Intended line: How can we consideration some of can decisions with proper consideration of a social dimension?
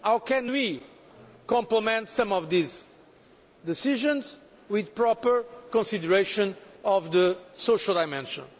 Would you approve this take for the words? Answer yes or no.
no